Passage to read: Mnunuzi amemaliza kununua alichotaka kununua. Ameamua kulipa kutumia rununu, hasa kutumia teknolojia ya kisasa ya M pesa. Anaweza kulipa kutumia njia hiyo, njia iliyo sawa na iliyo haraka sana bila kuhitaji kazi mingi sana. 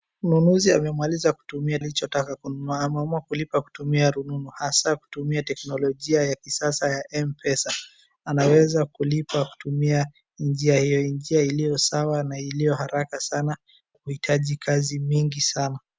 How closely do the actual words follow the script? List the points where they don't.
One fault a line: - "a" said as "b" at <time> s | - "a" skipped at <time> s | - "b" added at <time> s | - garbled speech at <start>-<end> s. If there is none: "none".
- "kununua" said as "kutumia" at 1.3 s
- "bila" skipped at 13.6 s